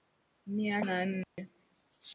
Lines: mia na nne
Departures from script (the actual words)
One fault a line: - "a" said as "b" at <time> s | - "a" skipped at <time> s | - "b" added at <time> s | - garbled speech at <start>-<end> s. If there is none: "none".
none